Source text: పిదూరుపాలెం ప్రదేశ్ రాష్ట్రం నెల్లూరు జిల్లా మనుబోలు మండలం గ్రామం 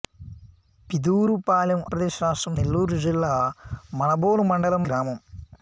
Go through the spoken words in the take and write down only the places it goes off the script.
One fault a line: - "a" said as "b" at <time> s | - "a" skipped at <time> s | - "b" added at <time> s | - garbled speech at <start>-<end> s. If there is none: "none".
none